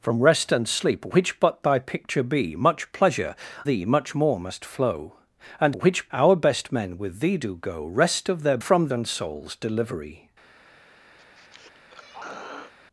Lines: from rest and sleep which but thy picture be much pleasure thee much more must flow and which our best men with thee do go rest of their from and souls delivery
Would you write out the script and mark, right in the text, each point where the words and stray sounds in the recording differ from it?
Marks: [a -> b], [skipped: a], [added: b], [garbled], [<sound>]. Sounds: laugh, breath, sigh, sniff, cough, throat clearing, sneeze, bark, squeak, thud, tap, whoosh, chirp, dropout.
from rest and sleep which but thy picture be much pleasure thee much more must flow and which our best men with thee do go rest of their from and souls delivery [throat clearing]